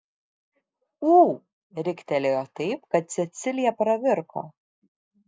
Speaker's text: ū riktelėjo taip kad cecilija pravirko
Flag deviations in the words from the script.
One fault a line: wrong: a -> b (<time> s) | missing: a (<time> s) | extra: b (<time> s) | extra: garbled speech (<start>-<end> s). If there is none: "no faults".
no faults